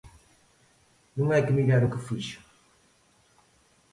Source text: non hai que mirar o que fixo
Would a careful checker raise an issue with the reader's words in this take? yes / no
no